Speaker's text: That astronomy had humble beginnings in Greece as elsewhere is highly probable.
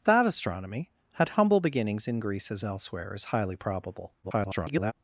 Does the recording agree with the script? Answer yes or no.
no